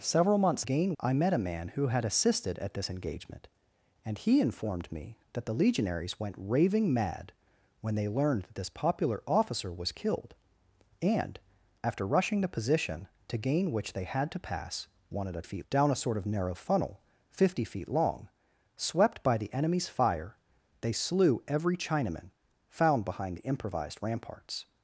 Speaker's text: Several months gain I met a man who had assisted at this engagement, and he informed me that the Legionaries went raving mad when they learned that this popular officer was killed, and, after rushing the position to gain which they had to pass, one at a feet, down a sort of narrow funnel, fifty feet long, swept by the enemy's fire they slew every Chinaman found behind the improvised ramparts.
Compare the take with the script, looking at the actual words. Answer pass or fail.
pass